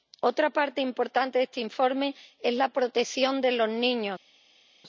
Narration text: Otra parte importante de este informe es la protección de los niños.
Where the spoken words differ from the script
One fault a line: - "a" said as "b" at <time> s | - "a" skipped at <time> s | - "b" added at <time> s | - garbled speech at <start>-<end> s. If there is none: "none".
none